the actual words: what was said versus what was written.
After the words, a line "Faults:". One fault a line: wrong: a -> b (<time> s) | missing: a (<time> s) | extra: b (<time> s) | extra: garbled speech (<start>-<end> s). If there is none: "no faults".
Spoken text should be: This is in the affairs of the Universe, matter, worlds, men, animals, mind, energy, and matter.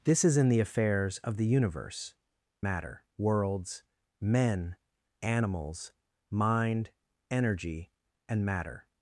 This is in the affairs of the Universe, matter, worlds, men, animals, mind, energy, and matter.
Faults:
no faults